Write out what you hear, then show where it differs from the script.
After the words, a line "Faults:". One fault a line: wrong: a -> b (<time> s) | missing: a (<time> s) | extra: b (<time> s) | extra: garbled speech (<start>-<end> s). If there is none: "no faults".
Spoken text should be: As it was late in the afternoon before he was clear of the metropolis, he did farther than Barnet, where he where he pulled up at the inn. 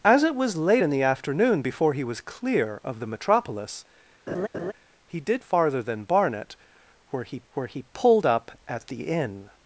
As it was late in the afternoon before he was clear of the metropolis, he did farther than Barnet, where he where he pulled up at the inn.
Faults:
no faults